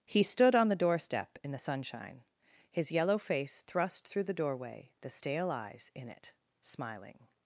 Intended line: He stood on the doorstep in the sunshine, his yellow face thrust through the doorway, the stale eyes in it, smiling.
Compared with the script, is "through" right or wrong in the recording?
right